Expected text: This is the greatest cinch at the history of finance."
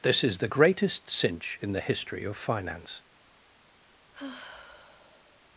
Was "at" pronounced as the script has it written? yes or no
no